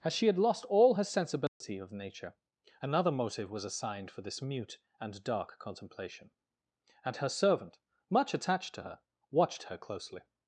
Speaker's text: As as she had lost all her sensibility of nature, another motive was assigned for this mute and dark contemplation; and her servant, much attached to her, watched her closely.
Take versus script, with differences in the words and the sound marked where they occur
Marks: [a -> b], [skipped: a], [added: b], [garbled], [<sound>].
As [skipped: as] she had lost all her sensibility [dropout] of nature, another motive was assigned for this mute and dark contemplation; and her servant, much attached to her, watched her closely.